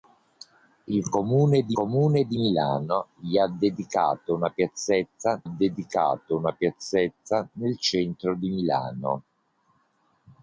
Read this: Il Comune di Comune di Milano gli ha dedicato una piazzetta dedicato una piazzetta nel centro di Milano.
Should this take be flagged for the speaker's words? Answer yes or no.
no